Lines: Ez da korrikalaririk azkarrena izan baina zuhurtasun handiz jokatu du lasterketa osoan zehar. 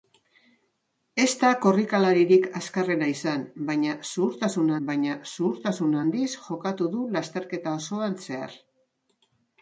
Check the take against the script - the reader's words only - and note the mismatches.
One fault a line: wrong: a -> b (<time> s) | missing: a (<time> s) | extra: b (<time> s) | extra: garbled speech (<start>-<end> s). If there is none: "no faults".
extra: baina zuhurtasun (4.9 s)